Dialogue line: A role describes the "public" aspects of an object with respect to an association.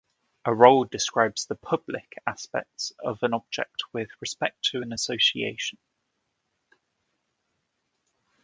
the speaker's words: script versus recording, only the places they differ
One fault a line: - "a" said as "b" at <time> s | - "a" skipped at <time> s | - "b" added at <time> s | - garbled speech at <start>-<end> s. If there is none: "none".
none